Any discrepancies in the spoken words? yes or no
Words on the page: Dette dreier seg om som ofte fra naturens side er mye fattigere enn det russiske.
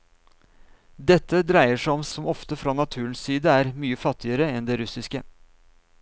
no